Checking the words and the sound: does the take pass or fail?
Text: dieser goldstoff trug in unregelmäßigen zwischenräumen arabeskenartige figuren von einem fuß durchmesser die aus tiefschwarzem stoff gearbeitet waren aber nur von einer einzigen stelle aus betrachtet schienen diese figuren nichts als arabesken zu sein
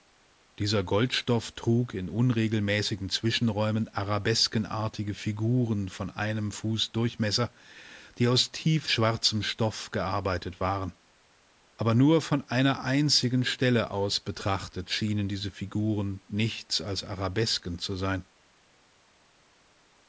pass